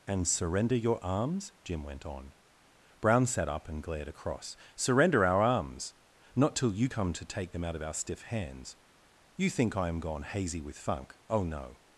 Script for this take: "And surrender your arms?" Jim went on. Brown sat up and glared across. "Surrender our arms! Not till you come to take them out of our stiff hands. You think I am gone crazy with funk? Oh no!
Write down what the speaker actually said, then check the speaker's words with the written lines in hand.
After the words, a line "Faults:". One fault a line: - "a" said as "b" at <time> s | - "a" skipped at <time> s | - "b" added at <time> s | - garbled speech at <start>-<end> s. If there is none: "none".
"And surrender your arms?" Jim went on. Brown sat up and glared across. "Surrender our arms! Not till you come to take them out of our stiff hands. You think I am gone hazy with funk? Oh no!
Faults:
- "crazy" said as "hazy" at 10.2 s